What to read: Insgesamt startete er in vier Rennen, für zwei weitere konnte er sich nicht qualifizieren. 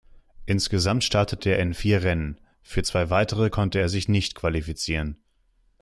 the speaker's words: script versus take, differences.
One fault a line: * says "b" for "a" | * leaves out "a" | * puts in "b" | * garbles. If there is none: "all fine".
all fine